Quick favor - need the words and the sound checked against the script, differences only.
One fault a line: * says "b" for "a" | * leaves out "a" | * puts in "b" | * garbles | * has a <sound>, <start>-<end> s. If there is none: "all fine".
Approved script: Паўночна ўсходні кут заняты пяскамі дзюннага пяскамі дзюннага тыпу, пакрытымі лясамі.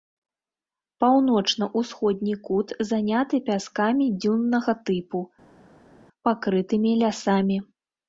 * leaves out "пяскамі дзюннага"